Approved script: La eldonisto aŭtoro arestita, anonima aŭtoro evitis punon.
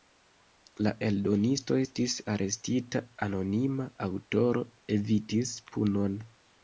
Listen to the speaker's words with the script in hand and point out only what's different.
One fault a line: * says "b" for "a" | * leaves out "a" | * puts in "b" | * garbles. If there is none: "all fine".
* says "estis" for "aŭtoro"